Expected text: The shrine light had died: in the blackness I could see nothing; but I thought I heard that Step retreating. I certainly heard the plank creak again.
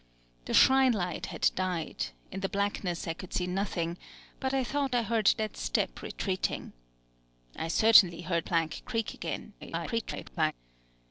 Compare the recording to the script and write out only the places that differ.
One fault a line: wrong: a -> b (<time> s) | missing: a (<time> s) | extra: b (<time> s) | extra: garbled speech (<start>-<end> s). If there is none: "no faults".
missing: the (8.5 s)
extra: garbled speech (9.6-10.5 s)